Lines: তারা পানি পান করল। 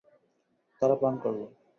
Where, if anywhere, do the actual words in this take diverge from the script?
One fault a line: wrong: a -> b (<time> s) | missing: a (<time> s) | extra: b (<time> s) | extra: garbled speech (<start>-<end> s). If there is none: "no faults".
missing: পানি (0.9 s)